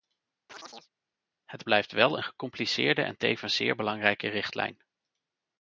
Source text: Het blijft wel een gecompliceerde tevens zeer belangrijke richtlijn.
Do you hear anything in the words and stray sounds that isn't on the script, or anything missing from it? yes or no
yes